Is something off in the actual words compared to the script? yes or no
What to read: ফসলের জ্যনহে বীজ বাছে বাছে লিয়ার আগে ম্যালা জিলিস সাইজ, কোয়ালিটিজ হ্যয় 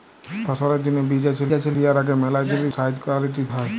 no